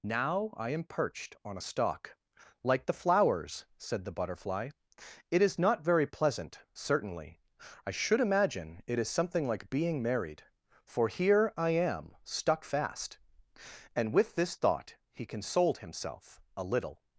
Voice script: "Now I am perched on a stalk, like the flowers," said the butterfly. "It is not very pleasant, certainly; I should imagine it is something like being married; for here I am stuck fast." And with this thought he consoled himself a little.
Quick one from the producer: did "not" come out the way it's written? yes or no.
yes